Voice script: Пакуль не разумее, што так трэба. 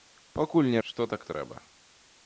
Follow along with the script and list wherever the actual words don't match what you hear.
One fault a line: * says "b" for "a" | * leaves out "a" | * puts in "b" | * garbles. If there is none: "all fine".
* leaves out "разумее"